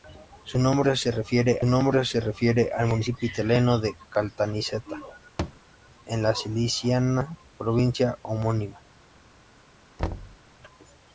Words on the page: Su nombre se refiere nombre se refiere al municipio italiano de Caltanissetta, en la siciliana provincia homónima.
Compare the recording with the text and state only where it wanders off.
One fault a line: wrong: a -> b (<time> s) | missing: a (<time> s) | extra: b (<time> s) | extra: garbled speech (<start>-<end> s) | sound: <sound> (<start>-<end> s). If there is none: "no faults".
sound: thud (5.4-5.6 s)
sound: thud (10.0-10.4 s)